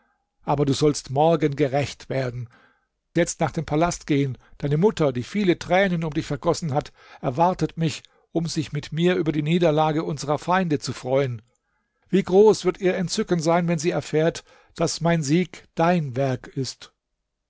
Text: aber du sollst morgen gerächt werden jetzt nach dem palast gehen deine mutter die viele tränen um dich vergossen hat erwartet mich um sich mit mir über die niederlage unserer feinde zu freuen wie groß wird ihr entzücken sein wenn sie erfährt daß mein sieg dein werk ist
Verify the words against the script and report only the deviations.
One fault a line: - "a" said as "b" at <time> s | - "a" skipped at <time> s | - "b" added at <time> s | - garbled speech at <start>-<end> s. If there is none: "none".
none